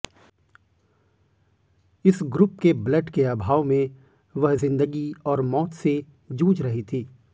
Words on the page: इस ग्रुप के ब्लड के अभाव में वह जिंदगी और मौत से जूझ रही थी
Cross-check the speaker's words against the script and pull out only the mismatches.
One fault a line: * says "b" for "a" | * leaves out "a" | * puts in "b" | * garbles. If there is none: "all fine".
all fine